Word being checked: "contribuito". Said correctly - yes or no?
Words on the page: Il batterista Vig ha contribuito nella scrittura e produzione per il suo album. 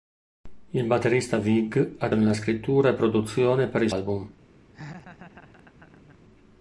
no